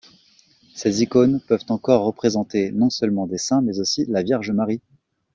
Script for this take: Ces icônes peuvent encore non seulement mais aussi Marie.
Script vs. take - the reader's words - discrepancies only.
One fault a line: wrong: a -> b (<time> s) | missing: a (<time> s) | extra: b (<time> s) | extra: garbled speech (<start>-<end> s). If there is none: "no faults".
extra: représenter (2.0 s)
extra: des saints (3.3 s)
extra: la Vierge (4.1 s)